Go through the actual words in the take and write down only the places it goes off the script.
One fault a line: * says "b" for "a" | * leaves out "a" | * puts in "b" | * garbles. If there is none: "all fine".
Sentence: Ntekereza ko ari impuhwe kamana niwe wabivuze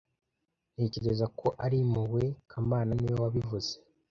all fine